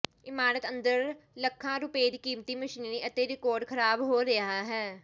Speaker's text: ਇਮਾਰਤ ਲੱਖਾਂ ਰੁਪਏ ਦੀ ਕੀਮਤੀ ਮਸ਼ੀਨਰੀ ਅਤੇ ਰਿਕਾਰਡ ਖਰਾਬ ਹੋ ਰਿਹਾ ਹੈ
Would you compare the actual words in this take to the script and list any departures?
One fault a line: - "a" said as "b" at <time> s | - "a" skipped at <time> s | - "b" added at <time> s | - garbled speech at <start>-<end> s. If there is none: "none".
- "ਅੰਦਰ" added at 0.7 s